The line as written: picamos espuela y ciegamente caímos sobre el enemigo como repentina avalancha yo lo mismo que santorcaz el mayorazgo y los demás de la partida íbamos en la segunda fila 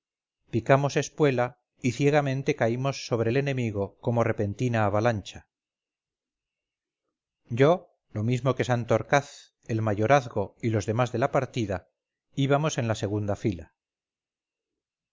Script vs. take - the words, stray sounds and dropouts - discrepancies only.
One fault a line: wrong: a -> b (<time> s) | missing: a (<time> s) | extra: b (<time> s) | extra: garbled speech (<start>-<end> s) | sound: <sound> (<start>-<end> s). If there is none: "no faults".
no faults